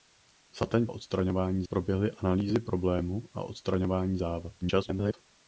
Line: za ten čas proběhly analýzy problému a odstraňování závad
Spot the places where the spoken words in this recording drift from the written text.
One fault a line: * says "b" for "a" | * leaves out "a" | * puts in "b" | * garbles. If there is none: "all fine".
* says "odstraňování" for "čas"
* garbles